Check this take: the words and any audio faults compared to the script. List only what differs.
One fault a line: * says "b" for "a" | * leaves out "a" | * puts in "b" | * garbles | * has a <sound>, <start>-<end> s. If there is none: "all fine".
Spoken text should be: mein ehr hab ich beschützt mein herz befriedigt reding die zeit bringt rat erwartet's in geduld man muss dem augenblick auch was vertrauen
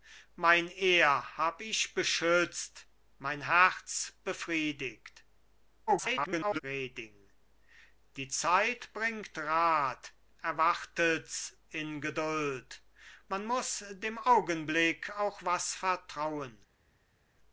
* garbles